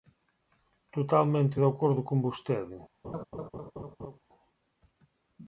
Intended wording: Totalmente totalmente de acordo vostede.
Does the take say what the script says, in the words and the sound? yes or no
no